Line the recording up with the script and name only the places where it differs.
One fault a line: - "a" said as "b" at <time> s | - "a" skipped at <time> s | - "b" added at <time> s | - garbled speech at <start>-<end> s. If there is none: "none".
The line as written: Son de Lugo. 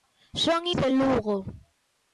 none